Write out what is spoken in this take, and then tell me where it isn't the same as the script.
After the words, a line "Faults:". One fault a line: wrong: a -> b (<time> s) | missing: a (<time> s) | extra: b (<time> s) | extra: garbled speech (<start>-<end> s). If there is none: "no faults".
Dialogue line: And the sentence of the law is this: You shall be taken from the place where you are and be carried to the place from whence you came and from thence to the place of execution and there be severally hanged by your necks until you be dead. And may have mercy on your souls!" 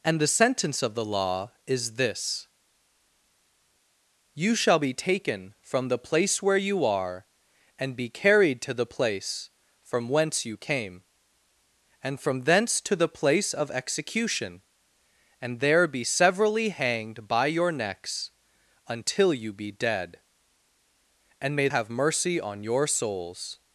And the sentence of the law is this: You shall be taken from the place where you are and be carried to the place from whence you came and from thence to the place of execution and there be severally hanged by your necks until you be dead. And may have mercy on your souls!"
Faults:
no faults